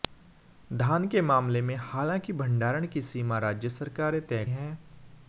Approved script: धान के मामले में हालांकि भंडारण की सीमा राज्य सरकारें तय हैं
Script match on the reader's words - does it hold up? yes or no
yes